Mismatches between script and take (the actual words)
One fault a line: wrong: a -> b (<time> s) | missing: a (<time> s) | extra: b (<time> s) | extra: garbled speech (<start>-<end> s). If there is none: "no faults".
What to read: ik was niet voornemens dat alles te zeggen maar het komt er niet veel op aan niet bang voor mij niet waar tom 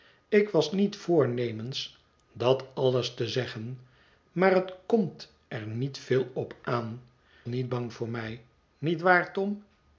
no faults